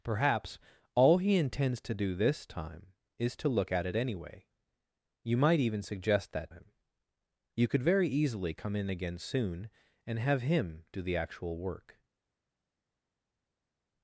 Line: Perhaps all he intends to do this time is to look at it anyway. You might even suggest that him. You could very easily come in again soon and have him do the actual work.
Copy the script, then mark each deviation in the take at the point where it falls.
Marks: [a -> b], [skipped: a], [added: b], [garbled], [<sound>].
Perhaps all he intends to do this time is to look at it anyway. You might even suggest that him. You could very easily come in again soon and have him do the actual work.